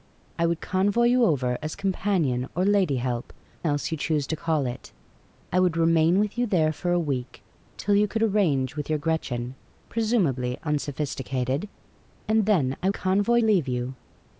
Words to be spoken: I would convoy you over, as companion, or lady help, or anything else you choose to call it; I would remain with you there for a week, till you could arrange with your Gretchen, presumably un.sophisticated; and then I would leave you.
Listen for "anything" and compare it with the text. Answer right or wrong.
wrong